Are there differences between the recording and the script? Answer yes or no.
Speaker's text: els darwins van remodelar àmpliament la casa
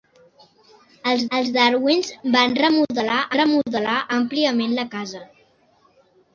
yes